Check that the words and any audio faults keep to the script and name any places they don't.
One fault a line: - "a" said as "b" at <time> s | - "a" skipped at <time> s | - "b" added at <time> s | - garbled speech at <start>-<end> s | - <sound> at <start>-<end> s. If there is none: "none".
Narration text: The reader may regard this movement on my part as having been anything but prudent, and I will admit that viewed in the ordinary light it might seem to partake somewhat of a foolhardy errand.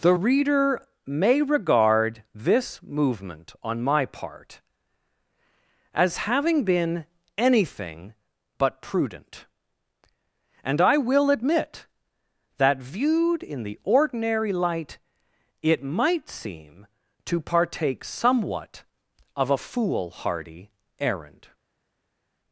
none